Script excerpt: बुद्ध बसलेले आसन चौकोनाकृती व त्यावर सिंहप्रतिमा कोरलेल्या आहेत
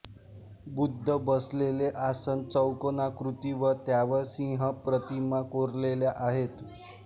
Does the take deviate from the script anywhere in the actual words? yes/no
no